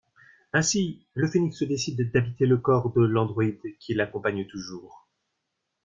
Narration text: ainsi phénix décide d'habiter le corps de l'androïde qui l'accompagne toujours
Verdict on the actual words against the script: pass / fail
fail